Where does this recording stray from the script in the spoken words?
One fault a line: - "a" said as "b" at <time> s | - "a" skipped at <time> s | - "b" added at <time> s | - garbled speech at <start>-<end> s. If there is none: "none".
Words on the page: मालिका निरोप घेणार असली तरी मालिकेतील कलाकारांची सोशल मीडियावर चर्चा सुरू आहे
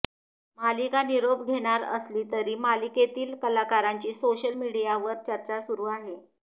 none